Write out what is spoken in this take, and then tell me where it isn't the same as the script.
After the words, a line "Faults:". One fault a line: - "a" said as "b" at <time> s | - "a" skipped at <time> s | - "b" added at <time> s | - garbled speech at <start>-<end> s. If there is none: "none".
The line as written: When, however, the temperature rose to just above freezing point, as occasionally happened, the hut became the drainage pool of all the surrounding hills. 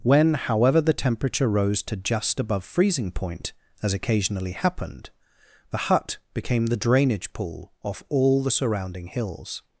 When, however, the temperature rose to just above freezing point, as occasionally happened, the hut became the drainage pool off all the surrounding hills.
Faults:
- "of" said as "off" at 7.8 s